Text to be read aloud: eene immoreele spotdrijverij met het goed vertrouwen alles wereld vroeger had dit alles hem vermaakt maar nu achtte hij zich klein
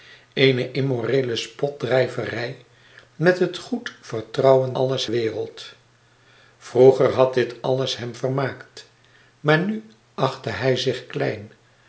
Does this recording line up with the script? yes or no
yes